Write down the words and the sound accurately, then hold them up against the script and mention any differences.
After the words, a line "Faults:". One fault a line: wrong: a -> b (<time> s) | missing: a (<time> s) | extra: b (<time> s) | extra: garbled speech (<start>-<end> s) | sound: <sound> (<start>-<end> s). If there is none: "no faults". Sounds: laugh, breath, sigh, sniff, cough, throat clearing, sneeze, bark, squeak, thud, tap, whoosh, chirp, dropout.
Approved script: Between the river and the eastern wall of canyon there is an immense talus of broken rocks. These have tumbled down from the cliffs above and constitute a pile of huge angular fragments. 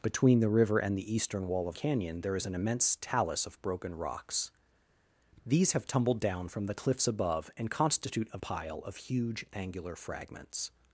Between the river and the eastern wall of canyon there is an immense talus of broken rocks. These have tumbled down from the cliffs above and constitute a pile of huge angular fragments.
Faults:
no faults